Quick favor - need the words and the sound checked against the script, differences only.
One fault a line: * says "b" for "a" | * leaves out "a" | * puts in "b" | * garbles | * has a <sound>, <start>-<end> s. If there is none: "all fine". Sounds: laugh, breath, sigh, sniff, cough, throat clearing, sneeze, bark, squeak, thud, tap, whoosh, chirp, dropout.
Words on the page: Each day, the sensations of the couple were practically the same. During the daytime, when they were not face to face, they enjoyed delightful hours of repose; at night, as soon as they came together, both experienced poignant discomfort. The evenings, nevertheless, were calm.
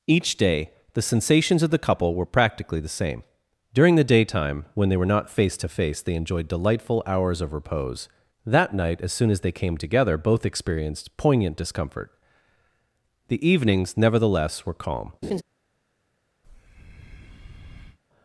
* says "that" for "at"
* has a laugh, 15.2-15.4 s
* has a breath, 16.4-18.0 s